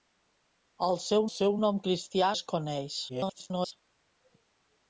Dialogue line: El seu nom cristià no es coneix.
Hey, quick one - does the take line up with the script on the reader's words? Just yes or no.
no